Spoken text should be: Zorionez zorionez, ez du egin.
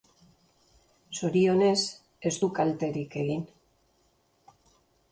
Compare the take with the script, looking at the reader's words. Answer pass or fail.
fail